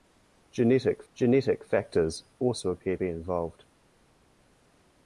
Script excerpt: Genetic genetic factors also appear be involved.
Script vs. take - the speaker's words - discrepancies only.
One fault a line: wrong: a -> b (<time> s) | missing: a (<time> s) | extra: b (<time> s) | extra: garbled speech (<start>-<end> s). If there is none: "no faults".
no faults